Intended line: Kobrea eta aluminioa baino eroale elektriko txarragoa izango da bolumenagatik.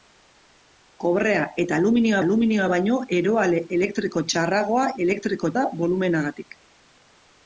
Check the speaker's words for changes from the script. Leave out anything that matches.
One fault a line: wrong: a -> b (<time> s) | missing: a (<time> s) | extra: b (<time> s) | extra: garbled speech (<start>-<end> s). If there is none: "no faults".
extra: aluminioa (2.3 s)
wrong: izango -> elektriko (5.1 s)